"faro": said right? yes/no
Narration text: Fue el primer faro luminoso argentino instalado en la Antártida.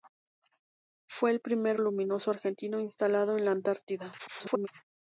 no